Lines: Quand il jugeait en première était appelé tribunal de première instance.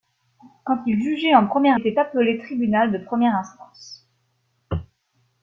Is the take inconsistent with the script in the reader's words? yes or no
no